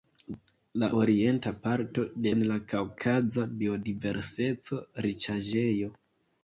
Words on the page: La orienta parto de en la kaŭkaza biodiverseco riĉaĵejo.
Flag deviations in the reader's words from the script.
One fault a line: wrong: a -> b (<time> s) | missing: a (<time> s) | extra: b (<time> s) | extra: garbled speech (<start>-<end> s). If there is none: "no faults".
no faults